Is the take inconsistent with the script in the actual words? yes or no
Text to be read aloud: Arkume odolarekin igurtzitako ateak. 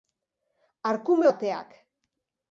yes